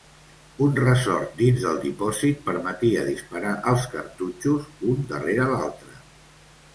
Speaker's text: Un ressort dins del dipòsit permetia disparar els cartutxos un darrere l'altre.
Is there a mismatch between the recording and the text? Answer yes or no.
no